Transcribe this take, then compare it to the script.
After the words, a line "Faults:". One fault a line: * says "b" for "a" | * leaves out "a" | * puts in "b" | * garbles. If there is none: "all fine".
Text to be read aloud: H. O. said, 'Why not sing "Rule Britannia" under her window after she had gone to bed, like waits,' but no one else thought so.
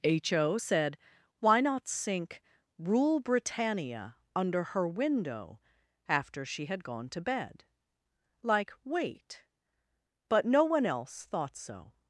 H. O. said, 'Why not sink "Rule Britannia" under her window after she had gone to bed, like wait,' but no one else thought so.
Faults:
* says "sink" for "sing"
* says "wait" for "waits"